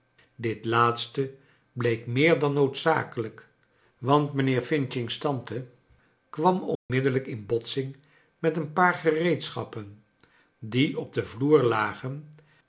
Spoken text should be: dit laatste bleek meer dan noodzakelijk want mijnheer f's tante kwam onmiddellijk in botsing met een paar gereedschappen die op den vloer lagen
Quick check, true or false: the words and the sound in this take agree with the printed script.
false